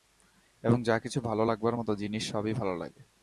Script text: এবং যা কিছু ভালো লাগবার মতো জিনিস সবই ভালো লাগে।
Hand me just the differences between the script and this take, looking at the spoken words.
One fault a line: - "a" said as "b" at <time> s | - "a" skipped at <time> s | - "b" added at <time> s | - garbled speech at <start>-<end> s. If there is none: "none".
none